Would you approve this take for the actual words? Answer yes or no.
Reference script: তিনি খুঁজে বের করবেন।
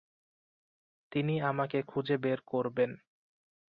no